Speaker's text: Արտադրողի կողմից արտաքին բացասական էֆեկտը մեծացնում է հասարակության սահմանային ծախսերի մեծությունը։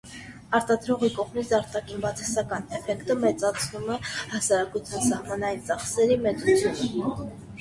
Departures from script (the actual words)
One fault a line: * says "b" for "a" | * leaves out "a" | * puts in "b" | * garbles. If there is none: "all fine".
all fine